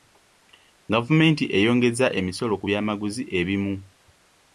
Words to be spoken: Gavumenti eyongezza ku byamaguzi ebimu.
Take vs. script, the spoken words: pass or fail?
fail